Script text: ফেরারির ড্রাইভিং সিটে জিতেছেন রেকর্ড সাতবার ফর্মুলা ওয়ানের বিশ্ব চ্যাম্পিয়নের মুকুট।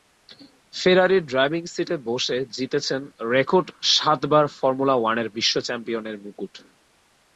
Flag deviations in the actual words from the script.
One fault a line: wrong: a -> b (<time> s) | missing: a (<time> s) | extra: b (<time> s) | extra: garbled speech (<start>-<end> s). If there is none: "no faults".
extra: বসে (2.1 s)